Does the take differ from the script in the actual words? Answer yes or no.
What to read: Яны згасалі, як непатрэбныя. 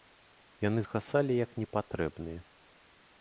no